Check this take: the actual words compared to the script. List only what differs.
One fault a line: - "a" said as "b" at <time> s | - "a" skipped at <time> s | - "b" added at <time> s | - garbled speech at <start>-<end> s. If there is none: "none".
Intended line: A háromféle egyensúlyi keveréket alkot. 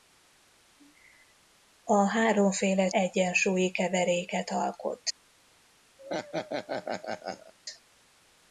none